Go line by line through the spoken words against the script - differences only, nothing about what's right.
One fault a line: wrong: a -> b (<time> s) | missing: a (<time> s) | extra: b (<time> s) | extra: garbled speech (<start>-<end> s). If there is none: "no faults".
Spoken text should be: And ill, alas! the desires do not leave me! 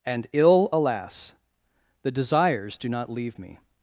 no faults